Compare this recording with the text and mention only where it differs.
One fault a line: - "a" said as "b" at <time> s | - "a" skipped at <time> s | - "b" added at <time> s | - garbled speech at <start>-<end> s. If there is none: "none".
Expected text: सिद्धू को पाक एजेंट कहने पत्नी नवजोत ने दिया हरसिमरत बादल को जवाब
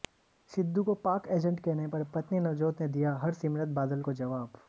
- "पर" added at 1.9 s